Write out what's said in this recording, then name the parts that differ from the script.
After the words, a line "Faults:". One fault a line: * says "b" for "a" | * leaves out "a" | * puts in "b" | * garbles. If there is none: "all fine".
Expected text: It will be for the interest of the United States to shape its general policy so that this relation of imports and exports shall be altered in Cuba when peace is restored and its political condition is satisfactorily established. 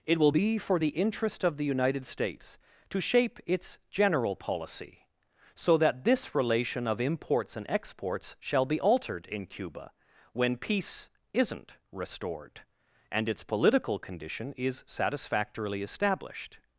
It will be for the interest of the United States to shape its general policy so that this relation of imports and exports shall be altered in Cuba when peace isn't restored and its political condition is satisfactorily established.
Faults:
* says "isn't" for "is"